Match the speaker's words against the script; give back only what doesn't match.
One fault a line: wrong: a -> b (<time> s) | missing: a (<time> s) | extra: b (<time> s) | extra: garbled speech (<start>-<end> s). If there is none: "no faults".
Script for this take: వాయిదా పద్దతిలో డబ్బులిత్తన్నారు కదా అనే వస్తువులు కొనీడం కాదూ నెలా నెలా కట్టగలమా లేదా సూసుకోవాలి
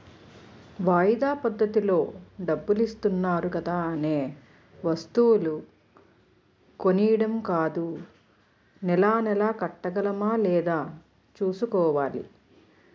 no faults